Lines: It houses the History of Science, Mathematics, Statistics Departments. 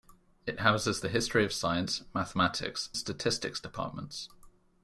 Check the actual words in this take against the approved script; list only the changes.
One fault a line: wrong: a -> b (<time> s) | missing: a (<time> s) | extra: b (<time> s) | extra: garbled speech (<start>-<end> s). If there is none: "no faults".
no faults